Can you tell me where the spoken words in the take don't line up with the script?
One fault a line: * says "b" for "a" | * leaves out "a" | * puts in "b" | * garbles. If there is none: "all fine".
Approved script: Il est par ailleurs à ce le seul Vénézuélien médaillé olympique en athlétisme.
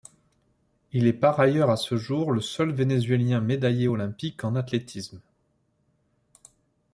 * puts in "jour"